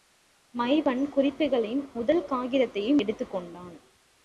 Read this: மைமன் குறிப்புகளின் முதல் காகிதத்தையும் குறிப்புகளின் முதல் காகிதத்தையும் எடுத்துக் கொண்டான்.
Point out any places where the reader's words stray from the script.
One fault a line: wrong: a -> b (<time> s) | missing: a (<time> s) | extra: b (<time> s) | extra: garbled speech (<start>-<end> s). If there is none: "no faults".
missing: குறிப்புகளின் முதல் காகிதத்தையும் (3.0 s)